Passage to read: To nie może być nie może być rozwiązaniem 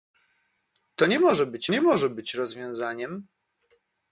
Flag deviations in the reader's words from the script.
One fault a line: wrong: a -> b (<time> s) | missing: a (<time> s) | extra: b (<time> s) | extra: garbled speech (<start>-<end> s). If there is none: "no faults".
no faults